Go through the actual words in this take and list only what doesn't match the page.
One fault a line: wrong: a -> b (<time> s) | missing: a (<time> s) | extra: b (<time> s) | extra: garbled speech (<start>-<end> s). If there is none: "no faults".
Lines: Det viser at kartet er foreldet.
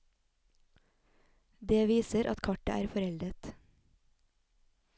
no faults